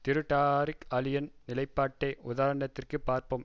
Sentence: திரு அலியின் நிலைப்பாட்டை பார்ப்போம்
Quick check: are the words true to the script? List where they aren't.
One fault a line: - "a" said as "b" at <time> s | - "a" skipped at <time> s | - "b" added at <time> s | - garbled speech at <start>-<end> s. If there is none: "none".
- "டாரிக்" added at 0.3 s
- "உதாரணத்திற்கு" added at 2.2 s